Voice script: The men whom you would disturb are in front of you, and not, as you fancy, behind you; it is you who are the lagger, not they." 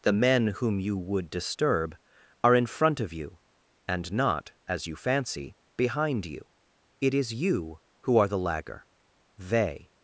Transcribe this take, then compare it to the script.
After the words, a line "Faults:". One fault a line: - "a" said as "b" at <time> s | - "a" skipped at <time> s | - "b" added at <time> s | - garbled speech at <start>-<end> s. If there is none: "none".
The men whom you would disturb are in front of you, and not, as you fancy, behind you; it is you who are the lagger, they."
Faults:
- "not" skipped at 8.9 s